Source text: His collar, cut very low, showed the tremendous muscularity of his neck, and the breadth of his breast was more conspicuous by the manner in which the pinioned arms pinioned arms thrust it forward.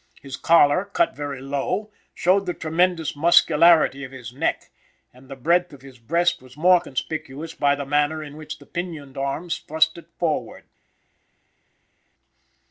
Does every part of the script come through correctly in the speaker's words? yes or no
no